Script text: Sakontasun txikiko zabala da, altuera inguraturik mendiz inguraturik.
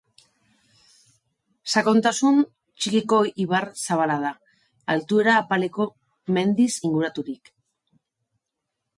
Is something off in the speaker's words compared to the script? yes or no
yes